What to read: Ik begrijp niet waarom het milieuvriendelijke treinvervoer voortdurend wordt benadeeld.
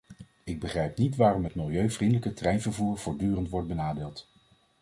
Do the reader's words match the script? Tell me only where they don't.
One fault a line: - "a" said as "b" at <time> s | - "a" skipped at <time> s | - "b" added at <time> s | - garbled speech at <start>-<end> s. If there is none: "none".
none